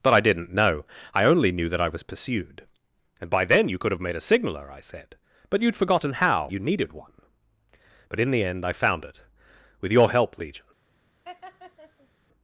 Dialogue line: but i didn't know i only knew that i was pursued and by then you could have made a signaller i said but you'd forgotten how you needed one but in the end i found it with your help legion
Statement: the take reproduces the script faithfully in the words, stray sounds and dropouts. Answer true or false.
false